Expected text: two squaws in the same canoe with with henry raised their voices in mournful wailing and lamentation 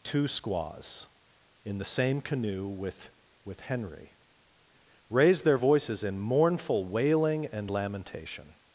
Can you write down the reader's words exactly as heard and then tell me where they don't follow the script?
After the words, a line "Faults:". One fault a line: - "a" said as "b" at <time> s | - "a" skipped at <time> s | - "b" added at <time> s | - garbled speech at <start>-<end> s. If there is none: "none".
two squaws in the same canoe with with henry raised their voices in mournful wailing and lamentation
Faults:
none